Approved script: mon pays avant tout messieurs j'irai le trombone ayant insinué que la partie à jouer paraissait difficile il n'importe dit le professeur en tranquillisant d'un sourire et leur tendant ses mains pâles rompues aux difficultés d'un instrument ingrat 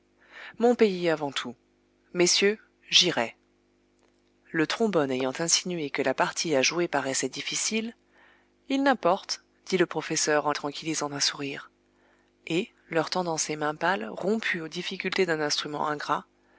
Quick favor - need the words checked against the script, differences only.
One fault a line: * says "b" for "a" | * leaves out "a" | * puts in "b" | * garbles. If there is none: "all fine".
all fine